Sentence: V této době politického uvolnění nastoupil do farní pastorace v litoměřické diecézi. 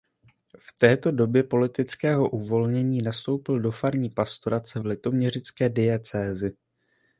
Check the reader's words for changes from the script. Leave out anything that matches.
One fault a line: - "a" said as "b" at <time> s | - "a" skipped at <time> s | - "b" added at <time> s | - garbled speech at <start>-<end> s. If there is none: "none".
none